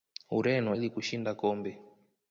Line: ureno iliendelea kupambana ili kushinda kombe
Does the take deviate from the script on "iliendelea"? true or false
true